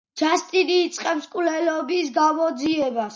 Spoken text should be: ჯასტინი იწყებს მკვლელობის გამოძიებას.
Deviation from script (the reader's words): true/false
false